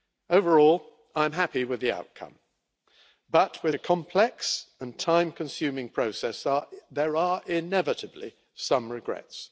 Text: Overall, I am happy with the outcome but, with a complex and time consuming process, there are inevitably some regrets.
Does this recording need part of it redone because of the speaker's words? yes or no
no